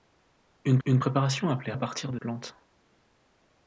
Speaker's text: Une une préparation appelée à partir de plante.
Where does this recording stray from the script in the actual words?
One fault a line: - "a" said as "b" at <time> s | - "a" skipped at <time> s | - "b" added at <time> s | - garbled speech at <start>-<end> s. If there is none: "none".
none